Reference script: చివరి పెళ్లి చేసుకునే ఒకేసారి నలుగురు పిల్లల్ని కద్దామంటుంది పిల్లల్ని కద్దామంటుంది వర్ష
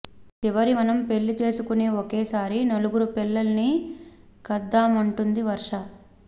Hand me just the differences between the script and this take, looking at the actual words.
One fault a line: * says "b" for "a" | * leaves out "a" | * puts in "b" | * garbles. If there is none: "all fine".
* puts in "మనం"
* leaves out "పిల్లల్ని కద్దామంటుంది"